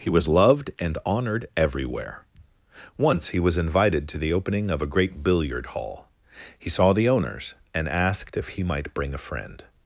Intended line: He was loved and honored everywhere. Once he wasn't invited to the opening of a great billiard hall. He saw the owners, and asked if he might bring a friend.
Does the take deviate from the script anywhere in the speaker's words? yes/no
yes